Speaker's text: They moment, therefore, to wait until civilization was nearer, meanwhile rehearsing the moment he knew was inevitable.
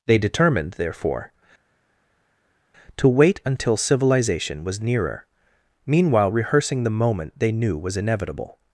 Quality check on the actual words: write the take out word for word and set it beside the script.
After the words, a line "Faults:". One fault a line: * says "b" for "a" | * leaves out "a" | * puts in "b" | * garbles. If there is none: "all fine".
They determined, therefore, to wait until civilization was nearer, meanwhile rehearsing the moment they knew was inevitable.
Faults:
* says "determined" for "moment"
* says "they" for "he"